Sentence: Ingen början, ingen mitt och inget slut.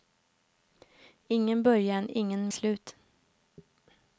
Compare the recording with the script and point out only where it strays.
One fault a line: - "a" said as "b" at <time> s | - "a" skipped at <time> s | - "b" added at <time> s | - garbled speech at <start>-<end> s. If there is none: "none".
- "mitt och inget" skipped at 2.5 s